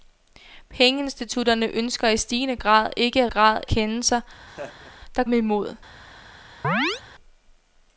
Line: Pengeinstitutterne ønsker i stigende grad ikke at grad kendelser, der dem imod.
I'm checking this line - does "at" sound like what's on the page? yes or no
yes